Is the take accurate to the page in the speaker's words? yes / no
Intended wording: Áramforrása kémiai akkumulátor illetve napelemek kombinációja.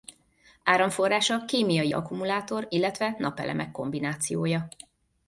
yes